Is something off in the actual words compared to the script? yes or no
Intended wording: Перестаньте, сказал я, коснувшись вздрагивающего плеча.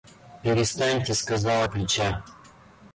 yes